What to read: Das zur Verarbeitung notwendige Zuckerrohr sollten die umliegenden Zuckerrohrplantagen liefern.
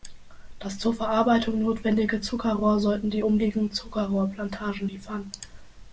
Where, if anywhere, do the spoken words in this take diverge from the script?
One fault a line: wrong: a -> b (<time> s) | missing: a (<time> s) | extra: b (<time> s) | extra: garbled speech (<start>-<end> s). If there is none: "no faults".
no faults